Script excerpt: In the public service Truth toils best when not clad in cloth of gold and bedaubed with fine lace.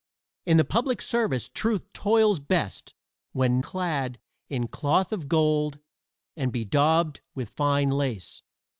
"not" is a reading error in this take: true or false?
true